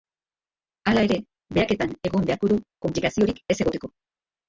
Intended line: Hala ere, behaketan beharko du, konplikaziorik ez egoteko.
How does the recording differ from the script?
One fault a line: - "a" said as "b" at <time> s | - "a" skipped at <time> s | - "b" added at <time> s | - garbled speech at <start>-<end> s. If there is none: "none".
- "egon" added at 2.1 s